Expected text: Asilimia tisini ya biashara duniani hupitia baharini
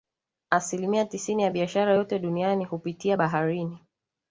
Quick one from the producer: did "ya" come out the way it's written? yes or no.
yes